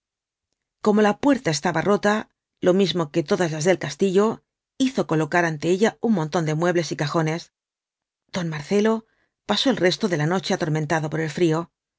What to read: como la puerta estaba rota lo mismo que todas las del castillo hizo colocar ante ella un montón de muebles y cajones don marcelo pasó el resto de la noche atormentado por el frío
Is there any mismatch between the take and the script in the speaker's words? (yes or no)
no